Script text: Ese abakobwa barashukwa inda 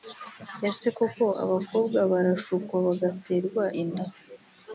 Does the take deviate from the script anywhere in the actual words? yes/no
yes